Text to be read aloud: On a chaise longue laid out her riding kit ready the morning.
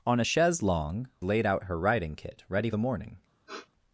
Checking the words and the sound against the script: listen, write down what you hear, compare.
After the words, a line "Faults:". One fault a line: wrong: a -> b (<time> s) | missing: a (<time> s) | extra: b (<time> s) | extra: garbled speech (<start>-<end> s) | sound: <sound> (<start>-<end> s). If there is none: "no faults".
On a chaise longue laid out her riding kit ready the morning.
Faults:
sound: sniff (3.5-3.7 s)